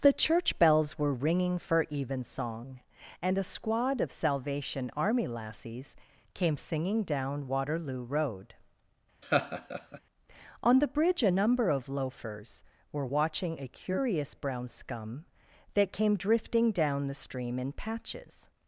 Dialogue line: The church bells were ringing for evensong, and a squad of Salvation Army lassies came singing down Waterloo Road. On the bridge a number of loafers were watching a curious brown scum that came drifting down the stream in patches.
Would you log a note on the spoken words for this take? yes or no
no